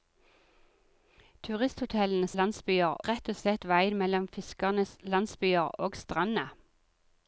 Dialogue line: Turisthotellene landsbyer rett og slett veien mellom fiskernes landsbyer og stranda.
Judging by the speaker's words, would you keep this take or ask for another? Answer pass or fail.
pass